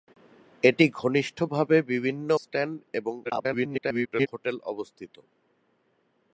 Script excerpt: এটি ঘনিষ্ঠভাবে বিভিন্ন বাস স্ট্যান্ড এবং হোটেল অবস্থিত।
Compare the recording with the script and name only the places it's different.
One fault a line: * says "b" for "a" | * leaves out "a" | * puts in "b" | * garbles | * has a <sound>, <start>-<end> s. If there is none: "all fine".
* leaves out "বাস"
* garbles